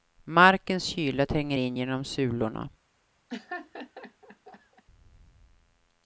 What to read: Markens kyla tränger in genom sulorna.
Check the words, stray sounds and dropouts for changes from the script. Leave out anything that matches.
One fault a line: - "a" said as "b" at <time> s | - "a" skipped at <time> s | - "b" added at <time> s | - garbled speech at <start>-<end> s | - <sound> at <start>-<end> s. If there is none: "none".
- laugh at 3.3-4.8 s